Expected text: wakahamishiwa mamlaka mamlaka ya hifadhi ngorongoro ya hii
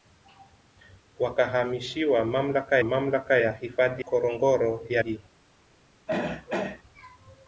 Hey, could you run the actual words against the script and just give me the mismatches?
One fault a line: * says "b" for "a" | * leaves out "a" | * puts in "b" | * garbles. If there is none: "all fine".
all fine